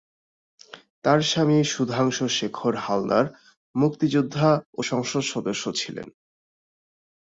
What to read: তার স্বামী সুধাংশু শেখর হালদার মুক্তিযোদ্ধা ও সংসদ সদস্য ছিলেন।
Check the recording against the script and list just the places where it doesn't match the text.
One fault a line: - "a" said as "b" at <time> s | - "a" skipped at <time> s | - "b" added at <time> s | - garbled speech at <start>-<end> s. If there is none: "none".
none